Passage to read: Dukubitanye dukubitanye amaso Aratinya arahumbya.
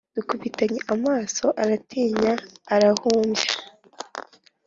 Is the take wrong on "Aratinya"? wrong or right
right